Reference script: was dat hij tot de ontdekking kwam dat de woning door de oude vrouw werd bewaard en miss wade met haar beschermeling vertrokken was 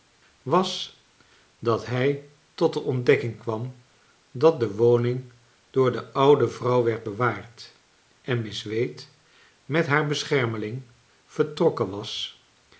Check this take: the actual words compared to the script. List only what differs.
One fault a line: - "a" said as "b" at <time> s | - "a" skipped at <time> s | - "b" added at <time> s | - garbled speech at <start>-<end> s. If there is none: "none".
none